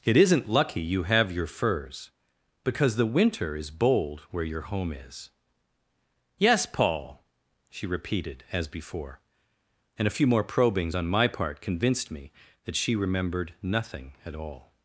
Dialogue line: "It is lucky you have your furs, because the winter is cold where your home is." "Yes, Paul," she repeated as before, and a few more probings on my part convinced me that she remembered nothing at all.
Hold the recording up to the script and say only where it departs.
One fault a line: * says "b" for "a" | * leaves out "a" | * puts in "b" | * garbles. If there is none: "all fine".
* says "isn't" for "is"
* says "bold" for "cold"